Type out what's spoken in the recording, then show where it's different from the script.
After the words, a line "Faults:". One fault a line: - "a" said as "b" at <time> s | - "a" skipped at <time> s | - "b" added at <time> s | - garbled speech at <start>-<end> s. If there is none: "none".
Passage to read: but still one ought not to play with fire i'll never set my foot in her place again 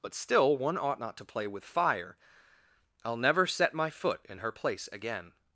but still one ought not to play with fire i'll never set my foot in her place again
Faults:
none